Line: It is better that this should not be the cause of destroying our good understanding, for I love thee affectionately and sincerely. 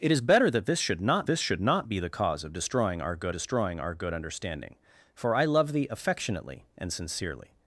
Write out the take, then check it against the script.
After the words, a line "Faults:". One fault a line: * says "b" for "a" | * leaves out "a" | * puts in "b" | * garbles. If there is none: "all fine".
It is better that this should not this should not be the cause of destroying our good destroying our good understanding, for I love thee affectionately and sincerely.
Faults:
* puts in "this should not"
* puts in "destroying our good"